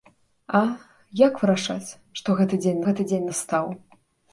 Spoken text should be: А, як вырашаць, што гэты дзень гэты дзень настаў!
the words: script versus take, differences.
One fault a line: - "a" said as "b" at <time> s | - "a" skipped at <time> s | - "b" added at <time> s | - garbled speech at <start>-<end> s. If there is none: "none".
none